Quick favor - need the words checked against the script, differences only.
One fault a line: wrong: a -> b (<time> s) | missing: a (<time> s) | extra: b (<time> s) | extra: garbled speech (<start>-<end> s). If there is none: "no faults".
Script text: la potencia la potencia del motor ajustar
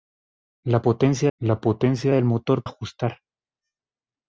no faults